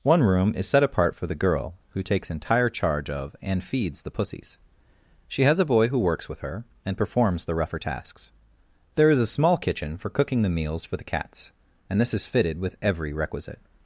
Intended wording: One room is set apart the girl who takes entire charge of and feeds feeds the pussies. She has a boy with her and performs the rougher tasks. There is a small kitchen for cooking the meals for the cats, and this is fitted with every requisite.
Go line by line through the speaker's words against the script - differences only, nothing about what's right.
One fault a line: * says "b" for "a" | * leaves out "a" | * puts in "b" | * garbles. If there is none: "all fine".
* puts in "for"
* leaves out "feeds"
* puts in "who works"